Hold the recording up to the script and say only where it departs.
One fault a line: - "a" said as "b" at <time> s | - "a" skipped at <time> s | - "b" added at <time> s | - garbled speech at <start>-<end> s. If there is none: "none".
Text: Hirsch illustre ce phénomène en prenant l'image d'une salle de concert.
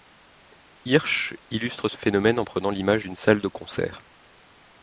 none